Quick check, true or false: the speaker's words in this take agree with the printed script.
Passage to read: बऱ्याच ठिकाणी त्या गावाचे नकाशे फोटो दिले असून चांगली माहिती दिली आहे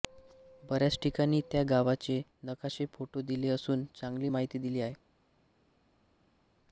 true